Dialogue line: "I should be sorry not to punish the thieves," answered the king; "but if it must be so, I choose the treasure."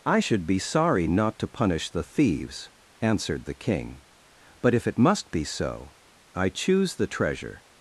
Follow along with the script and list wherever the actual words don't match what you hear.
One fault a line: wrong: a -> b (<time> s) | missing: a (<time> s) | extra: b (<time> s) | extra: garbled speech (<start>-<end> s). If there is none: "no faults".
no faults